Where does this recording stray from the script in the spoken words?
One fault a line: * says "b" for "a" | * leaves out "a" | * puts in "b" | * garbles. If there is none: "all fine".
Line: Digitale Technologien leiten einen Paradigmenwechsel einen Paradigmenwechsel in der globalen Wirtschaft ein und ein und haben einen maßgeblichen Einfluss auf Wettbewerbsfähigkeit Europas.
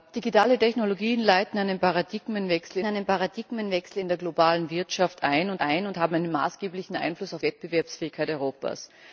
all fine